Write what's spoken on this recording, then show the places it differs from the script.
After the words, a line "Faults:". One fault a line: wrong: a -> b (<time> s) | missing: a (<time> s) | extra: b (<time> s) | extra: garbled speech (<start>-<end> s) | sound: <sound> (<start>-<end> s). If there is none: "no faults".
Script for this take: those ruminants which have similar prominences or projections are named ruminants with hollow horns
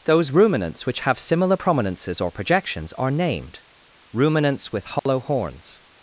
those ruminants which have similar prominences or projections are named ruminants with hollow horns
Faults:
sound: dropout (5.0-5.1 s)